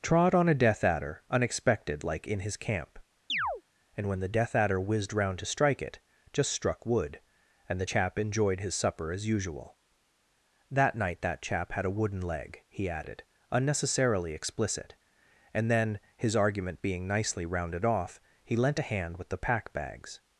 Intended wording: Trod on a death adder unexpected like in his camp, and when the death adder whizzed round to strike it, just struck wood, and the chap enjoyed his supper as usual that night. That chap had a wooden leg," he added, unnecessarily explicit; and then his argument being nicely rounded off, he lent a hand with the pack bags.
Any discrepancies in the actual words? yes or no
no